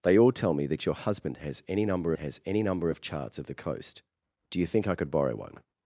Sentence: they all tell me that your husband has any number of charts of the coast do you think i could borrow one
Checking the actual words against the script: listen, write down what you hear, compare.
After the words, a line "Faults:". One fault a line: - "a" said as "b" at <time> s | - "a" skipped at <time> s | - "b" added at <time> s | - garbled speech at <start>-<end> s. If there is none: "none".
they all tell me that your husband has any number has any number of charts of the coast do you think i could borrow one
Faults:
- "has any number" added at 2.2 s